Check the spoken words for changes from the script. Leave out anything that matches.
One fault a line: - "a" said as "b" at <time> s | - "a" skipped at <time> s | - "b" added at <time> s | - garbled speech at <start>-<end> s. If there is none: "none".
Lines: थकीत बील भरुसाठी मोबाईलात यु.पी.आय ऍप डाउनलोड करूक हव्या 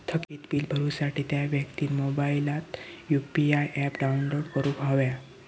- "त्या व्यक्तिन" added at 1.3 s